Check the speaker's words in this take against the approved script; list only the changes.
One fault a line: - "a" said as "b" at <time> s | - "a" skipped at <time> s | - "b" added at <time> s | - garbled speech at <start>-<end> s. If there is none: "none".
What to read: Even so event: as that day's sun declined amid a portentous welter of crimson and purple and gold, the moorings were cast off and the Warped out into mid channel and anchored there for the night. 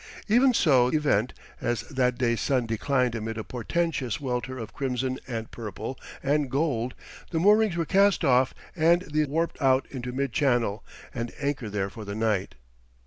none